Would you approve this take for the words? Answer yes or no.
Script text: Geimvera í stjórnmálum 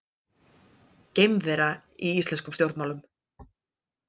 no